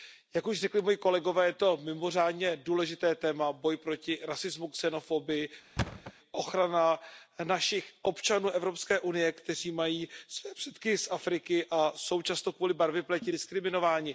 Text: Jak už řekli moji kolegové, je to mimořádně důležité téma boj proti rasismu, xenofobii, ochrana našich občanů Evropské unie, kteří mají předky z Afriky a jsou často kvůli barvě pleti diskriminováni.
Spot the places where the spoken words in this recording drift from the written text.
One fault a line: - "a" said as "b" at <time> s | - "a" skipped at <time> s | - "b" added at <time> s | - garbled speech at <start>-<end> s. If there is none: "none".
- "své" added at 10.3 s